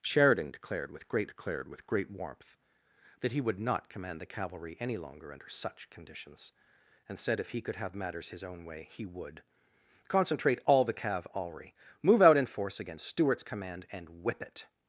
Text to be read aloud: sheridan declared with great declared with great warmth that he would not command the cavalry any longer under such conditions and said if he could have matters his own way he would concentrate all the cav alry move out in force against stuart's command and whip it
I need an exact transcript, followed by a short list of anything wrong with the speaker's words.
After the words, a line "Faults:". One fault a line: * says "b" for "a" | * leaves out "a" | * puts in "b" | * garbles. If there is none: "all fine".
sheridan declared with great declared with great warmth that he would not command the cavalry any longer under such conditions and said if he could have matters his own way he would concentrate all the cav alry move out in force against stuart's command and whip it
Faults:
all fine